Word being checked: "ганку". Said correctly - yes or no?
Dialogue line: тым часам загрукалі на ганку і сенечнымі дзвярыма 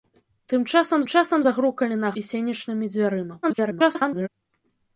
no